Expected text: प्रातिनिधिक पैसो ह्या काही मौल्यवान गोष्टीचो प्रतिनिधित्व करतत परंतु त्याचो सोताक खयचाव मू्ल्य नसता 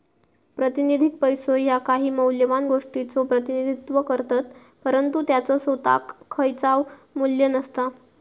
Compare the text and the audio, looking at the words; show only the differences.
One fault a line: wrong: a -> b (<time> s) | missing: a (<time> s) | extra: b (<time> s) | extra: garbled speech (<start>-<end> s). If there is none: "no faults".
no faults